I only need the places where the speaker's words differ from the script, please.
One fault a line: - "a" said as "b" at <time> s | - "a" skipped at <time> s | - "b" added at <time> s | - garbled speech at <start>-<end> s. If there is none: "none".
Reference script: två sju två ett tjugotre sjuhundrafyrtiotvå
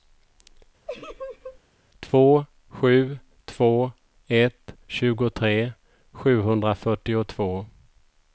none